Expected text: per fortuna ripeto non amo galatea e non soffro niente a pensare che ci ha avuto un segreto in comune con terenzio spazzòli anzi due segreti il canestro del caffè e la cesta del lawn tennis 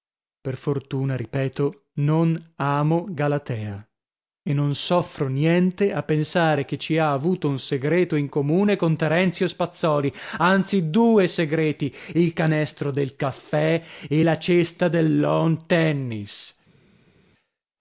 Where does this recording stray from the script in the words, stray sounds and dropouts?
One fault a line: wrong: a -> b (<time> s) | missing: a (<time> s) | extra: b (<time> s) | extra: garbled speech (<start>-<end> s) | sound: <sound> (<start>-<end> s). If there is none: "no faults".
no faults